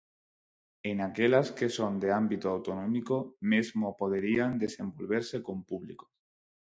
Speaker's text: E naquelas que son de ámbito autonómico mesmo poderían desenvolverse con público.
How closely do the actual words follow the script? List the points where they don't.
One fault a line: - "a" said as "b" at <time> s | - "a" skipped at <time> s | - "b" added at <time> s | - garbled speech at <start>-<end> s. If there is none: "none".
none